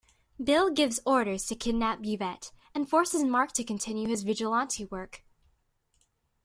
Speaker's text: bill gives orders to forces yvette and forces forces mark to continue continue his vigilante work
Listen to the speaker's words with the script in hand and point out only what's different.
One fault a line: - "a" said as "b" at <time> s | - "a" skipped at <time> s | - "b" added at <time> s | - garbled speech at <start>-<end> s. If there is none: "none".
- "forces" said as "kidnap" at 1.6 s
- "forces" skipped at 3.2 s
- "continue" skipped at 4.1 s